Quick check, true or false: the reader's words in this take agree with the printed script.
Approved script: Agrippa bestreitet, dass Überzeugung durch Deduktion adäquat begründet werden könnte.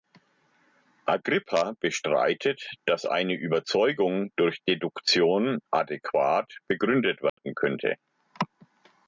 false